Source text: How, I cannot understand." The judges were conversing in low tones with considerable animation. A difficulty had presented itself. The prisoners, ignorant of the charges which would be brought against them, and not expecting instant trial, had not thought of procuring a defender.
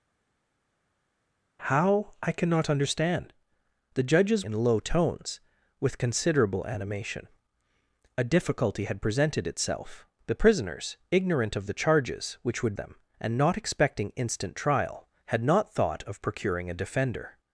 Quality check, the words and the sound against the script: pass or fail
fail